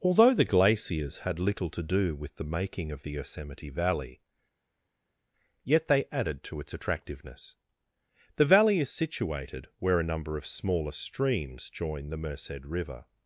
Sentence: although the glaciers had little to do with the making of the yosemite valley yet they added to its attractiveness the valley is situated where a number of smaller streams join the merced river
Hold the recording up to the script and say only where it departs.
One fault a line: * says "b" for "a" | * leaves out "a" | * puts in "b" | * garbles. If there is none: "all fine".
all fine